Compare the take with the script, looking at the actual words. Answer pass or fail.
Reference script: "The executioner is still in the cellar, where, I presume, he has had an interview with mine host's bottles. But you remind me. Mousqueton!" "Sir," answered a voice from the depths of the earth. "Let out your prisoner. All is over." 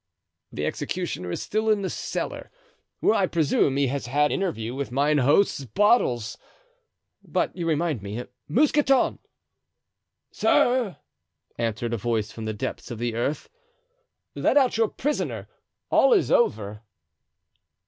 fail